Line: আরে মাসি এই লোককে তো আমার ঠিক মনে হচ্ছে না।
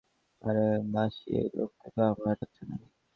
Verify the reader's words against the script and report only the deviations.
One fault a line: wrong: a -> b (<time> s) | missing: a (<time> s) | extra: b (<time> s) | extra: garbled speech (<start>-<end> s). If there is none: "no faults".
missing: ঠিক মনে (2.3 s)